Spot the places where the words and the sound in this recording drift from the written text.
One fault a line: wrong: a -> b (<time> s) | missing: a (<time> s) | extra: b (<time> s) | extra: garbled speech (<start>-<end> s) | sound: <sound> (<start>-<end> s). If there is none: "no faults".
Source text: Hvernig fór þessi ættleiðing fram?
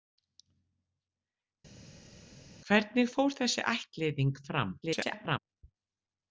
extra: garbled speech (4.8-5.4 s)